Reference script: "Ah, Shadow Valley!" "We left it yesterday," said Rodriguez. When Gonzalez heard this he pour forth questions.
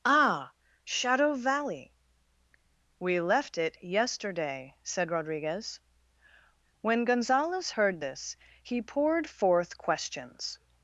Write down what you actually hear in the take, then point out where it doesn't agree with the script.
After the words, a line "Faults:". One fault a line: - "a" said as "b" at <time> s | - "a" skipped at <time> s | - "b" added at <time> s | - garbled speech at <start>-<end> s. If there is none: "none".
"Ah, Shadow Valley!" "We left it yesterday," said Rodriguez. When Gonzalez heard this he poured forth questions.
Faults:
- "pour" said as "poured" at 8.8 s